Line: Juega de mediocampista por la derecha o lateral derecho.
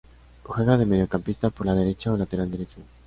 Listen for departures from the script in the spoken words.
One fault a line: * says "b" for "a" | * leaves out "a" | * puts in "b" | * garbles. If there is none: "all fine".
all fine